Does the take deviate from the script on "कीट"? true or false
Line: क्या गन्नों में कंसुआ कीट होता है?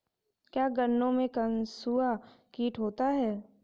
false